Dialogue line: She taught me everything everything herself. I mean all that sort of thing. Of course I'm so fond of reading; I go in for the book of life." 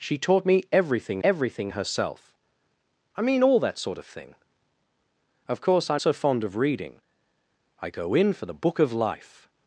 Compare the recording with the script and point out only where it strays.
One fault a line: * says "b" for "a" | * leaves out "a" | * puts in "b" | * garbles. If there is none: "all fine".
all fine